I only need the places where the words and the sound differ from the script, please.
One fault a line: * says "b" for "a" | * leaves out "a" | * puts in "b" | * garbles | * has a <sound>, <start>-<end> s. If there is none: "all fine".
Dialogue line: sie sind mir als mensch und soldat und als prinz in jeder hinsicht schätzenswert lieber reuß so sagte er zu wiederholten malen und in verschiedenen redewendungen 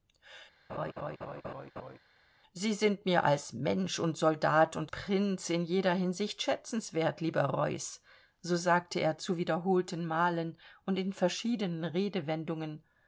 * has a laugh, 0.7-2.0 s
* leaves out "als"